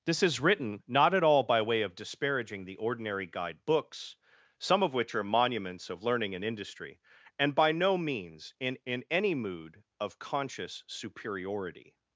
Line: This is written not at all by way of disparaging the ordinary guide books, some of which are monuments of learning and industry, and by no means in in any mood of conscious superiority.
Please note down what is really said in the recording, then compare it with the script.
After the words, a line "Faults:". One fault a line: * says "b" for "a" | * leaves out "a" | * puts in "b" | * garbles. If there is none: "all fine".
This is written not at all by way of disparaging the ordinary guide books, some of which are monuments of learning and industry, and by no means in in any mood of conscious superiority.
Faults:
all fine